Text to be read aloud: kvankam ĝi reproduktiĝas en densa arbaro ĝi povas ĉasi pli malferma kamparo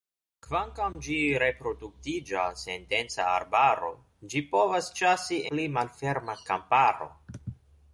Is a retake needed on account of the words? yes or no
no